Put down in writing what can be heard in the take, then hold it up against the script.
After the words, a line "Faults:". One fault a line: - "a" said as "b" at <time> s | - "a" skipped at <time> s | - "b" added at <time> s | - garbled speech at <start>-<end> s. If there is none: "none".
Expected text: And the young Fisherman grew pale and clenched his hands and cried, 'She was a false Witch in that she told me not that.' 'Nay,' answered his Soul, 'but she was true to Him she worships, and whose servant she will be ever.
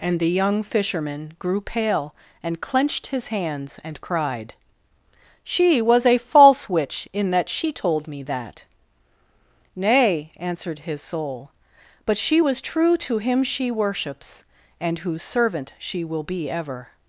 And the young Fisherman grew pale and clenched his hands and cried, 'She was a false Witch in that she told me that.' 'Nay,' answered his Soul, 'but she was true to Him she worships, and whose servant she will be ever.
Faults:
- "not" skipped at 8.2 s